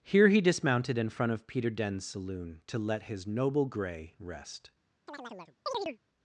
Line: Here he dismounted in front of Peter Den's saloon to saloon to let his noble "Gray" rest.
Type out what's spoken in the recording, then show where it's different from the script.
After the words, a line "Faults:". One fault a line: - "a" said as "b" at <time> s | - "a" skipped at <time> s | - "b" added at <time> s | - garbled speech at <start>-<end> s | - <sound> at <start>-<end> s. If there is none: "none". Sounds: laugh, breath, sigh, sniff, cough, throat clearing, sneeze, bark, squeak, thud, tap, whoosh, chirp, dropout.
Here he dismounted in front of Peter Den's saloon to let his noble "Gray" rest.
Faults:
- "saloon to" skipped at 2.8 s
- chirp at 5.1-6.0 s